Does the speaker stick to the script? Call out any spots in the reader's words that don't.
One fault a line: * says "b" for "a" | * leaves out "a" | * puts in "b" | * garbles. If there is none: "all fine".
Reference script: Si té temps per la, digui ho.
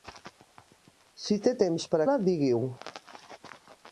all fine